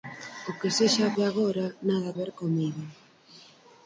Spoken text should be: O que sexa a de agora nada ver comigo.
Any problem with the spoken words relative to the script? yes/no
no